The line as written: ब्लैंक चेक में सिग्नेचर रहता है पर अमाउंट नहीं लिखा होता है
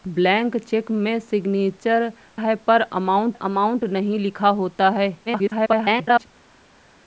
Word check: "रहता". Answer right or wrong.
wrong